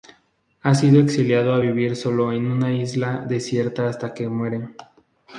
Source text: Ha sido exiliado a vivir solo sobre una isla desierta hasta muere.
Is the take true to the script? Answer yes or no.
no